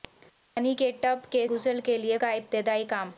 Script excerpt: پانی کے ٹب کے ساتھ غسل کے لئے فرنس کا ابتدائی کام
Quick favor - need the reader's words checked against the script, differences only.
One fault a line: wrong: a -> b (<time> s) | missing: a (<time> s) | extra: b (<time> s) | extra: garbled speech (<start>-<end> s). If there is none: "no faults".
missing: ساتھ (1.5 s)
missing: فرنس (2.2 s)